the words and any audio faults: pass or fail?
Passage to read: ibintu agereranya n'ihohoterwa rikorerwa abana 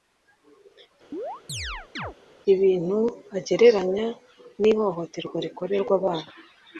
fail